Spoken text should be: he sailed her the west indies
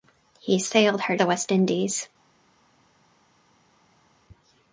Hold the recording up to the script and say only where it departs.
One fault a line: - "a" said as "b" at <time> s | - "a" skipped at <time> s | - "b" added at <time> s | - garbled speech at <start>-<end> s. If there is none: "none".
none